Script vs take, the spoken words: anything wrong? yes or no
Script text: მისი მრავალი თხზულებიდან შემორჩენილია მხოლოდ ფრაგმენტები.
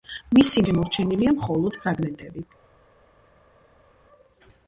yes